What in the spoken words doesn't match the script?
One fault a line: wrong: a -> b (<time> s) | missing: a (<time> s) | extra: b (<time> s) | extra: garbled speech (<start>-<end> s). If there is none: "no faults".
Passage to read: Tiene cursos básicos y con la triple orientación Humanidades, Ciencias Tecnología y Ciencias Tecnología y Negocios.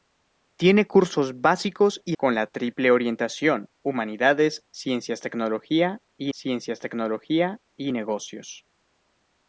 no faults